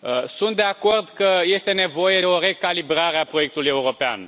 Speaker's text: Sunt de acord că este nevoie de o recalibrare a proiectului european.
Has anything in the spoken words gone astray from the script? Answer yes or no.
yes